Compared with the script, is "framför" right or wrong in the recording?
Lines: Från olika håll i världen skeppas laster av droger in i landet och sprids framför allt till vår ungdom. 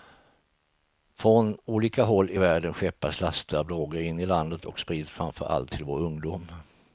right